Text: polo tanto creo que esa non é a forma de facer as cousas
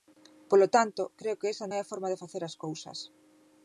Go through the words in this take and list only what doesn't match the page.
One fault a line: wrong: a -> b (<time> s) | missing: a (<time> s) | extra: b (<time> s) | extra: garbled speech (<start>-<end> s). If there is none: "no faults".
missing: non (1.6 s)